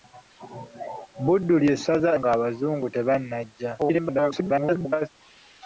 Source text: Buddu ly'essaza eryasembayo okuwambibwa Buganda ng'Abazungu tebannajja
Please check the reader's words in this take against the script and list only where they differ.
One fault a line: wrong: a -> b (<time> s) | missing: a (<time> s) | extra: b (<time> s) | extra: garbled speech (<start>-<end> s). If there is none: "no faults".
missing: eryasembayo okuwambibwa Buganda (2.1 s)
extra: garbled speech (3.8-5.1 s)